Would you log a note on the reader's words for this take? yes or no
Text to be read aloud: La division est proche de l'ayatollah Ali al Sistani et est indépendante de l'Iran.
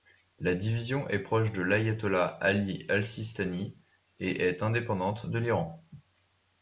no